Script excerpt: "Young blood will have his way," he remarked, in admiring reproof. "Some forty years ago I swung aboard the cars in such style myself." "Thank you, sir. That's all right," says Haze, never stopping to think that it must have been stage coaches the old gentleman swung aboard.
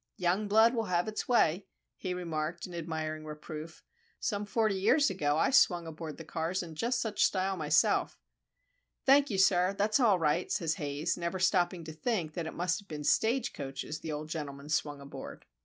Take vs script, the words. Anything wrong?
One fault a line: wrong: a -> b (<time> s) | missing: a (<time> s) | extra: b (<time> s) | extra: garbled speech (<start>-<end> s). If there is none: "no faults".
wrong: his -> its (1.1 s)
extra: just (6.7 s)